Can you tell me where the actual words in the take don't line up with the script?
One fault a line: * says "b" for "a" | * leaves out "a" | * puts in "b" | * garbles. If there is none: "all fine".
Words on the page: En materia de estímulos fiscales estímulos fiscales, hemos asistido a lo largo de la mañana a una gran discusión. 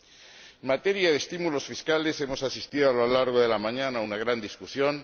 * leaves out "estímulos fiscales"